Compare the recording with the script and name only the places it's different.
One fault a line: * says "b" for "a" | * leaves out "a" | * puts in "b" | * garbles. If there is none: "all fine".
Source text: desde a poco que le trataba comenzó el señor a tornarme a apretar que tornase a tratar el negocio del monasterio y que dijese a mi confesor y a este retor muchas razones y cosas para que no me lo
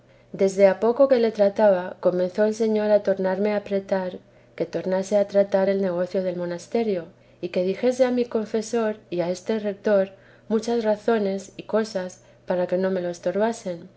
all fine